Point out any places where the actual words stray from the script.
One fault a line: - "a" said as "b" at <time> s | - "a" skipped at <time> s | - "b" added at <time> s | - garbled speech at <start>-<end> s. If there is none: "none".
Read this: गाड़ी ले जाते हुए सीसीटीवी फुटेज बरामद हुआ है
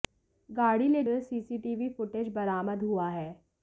- "जाते" skipped at 1.0 s